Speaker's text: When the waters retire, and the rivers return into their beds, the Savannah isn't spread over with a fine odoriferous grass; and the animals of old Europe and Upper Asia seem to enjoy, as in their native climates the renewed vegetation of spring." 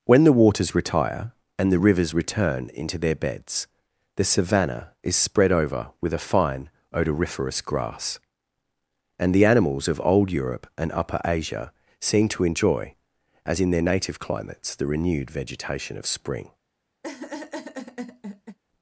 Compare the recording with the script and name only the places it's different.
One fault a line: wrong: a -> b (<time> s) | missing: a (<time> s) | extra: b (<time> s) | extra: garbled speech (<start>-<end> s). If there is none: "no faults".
wrong: isn't -> is (5.0 s)